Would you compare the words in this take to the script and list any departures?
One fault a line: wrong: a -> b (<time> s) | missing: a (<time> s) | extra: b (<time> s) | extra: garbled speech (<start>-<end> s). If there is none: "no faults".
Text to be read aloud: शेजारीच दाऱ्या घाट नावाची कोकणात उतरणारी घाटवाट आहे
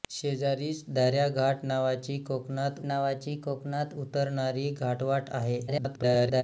extra: नावाची कोकणात (2.8 s)
extra: garbled speech (5.7-6.4 s)